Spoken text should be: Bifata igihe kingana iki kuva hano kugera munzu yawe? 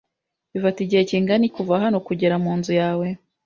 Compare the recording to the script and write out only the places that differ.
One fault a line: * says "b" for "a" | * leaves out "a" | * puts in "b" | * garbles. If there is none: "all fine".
* leaves out "iki"